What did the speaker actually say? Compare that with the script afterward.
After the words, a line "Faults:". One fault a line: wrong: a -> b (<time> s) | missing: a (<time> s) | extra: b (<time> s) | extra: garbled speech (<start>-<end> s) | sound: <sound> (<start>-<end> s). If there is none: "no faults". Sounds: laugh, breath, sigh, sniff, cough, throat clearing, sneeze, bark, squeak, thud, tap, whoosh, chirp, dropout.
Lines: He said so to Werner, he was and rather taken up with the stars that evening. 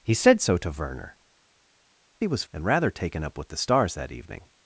He said so to Werner, he was and rather taken up with the stars that evening.
Faults:
no faults